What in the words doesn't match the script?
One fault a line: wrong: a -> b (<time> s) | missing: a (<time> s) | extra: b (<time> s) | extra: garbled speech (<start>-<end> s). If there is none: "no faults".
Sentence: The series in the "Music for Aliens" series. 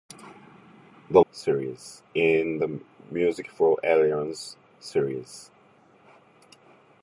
no faults